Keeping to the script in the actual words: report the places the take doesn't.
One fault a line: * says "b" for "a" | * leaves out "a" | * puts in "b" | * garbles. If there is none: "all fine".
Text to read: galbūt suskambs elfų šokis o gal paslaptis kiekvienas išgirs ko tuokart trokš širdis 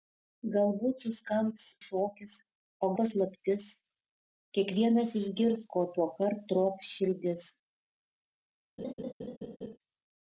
* leaves out "elfų"
* leaves out "gal"